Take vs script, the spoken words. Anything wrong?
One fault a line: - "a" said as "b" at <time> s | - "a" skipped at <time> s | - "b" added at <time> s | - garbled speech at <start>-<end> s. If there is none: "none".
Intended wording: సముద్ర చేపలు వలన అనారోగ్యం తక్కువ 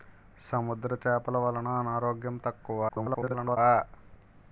- garbled speech at 2.9-3.6 s